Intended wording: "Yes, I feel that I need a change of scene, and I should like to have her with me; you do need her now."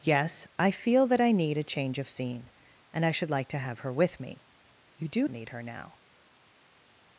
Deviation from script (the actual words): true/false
false